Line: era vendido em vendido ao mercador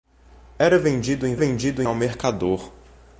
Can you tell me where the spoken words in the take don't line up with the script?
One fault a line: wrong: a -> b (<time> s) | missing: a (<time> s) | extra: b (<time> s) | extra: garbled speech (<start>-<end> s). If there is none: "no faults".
no faults